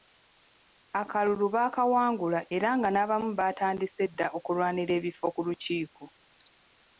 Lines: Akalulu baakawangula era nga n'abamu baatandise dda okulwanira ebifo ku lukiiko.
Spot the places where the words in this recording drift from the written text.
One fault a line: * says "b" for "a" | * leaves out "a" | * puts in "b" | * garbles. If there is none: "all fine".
all fine